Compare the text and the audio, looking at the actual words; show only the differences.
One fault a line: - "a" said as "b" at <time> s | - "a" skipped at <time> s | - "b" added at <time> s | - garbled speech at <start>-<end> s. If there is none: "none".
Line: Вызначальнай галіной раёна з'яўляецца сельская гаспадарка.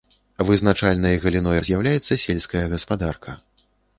- "раёна" skipped at 1.6 s